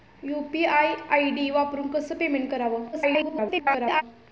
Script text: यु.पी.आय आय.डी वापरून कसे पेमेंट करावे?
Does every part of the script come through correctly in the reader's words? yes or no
no